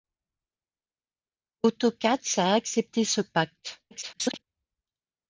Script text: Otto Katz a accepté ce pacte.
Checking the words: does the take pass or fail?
fail